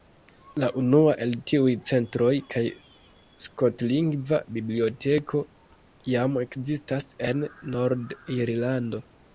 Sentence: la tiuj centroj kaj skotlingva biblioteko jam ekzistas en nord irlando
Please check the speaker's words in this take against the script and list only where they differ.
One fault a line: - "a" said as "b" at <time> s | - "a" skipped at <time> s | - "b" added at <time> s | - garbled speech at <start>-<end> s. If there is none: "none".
- "unua el" added at 0.8 s